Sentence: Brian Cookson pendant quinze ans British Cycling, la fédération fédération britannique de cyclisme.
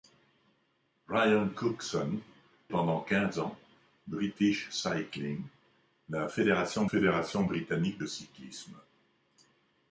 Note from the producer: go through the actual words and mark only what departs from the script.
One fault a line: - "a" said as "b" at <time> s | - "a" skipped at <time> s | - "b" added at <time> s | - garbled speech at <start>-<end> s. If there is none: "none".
none